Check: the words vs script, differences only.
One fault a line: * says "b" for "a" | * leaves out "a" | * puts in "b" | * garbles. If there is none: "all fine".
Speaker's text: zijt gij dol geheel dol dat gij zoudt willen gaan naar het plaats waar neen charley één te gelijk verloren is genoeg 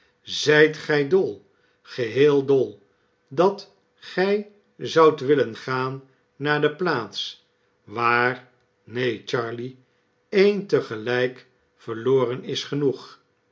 * says "de" for "het"